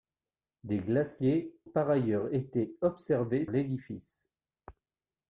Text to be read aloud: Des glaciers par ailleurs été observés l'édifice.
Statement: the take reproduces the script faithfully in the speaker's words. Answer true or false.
true